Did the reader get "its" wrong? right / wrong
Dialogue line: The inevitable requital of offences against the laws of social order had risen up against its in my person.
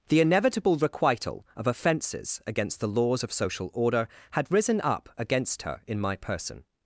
wrong